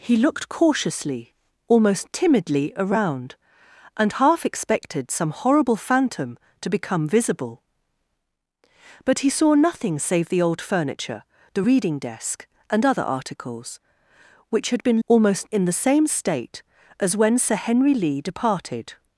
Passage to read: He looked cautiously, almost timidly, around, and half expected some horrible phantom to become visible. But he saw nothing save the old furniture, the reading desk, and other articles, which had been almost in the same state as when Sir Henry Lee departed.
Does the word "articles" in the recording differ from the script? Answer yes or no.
no